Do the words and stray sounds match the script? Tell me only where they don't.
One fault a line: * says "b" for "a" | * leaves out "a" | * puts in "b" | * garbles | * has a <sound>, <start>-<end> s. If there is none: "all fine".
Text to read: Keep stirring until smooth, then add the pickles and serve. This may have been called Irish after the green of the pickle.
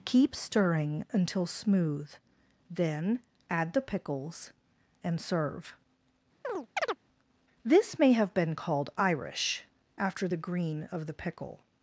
* has a chirp, 6.4-7.0 s